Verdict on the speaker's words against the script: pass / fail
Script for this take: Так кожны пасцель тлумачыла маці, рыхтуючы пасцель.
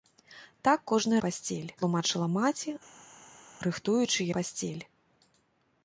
pass